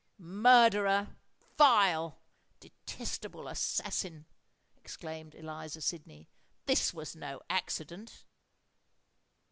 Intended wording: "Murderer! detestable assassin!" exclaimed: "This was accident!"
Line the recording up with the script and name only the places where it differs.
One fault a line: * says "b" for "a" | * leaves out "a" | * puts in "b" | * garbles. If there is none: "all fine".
* puts in "vile"
* puts in "Eliza Sydney"
* puts in "no"